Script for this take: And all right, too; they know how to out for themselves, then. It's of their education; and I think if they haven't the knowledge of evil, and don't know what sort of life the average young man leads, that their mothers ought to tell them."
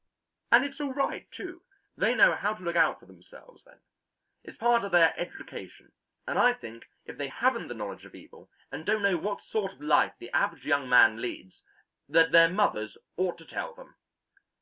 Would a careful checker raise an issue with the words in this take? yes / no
yes